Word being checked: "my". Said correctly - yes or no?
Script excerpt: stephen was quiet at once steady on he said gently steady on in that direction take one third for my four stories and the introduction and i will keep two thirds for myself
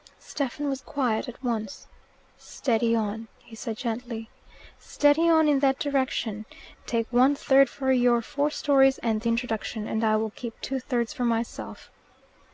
no